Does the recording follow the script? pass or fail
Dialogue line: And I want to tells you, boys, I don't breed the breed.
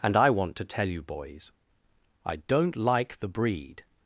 fail